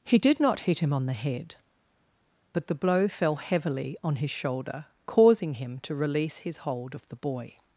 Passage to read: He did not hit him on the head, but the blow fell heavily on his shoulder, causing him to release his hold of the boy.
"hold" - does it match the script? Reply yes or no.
yes